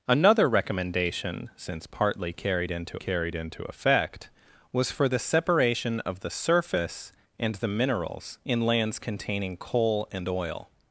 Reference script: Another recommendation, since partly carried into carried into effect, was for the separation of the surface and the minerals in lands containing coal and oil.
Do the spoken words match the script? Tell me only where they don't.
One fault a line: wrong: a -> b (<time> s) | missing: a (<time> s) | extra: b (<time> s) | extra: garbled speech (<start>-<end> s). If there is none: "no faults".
no faults